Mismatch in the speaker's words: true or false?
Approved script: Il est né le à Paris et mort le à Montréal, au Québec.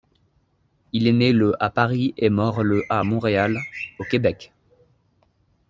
false